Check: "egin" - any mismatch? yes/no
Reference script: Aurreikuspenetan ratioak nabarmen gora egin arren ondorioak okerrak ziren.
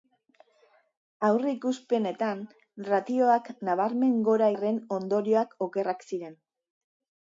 yes